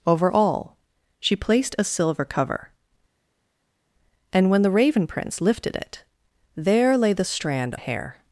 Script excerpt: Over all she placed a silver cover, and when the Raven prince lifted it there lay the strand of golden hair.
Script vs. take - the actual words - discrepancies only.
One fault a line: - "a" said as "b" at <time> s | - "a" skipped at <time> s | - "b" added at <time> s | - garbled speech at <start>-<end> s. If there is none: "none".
- "of golden" skipped at 7.8 s